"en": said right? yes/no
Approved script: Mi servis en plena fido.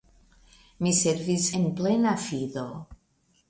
yes